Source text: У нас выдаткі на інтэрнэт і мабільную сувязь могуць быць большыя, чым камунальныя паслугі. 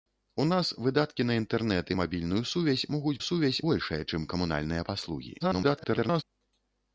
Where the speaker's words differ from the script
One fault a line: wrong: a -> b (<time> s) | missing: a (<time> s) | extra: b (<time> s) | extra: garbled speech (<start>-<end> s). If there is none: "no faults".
wrong: быць -> сувязь (3.3 s)
extra: garbled speech (5.4-6.2 s)